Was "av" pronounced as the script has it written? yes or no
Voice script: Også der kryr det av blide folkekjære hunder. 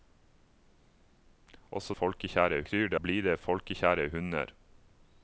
no